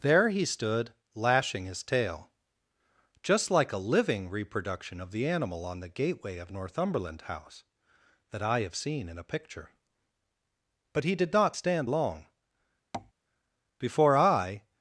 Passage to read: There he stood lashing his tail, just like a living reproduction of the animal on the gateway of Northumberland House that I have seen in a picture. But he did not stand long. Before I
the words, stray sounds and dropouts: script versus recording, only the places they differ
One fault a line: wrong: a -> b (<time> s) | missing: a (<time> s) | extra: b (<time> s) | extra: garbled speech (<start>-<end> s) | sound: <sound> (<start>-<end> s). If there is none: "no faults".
sound: tap (12.9-13.1 s)